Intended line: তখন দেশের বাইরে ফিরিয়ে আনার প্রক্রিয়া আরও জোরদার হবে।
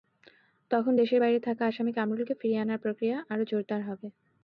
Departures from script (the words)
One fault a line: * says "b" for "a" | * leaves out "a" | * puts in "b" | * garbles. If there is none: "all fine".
* puts in "থাকা আসামি কামরুলকে"